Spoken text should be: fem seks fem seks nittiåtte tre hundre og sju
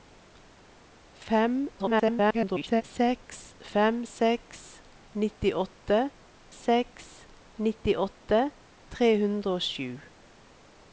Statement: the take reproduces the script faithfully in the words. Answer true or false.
false